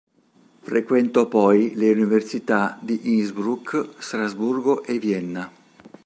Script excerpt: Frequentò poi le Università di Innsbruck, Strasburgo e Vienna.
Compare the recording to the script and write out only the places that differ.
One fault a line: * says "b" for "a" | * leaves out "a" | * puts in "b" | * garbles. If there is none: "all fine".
all fine